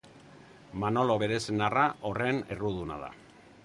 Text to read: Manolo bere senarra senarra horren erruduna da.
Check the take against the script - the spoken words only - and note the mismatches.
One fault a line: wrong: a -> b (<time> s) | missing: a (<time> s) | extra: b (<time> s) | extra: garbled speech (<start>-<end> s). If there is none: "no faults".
missing: senarra (1.8 s)